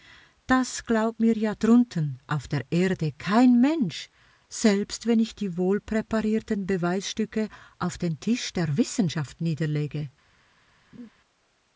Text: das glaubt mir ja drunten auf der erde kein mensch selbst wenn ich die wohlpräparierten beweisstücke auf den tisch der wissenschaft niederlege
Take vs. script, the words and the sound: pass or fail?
fail